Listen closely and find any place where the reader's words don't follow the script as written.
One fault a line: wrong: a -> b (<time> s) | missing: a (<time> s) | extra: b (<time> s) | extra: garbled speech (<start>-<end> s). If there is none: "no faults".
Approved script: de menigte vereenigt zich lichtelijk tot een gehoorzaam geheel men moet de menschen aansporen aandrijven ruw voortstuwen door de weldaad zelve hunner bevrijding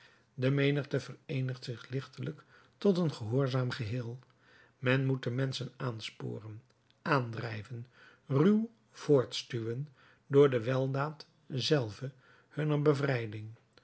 no faults